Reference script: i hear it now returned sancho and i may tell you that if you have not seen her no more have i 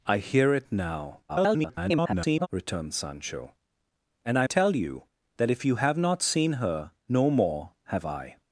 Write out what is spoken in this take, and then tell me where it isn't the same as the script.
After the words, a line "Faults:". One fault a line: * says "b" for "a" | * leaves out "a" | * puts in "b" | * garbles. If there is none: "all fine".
i hear it now [garbled] returned sancho and i tell you that if you have not seen her no more have i
Faults:
* garbles
* leaves out "may"